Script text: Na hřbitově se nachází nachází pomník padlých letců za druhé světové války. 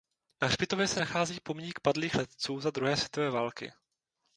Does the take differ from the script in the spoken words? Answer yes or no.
yes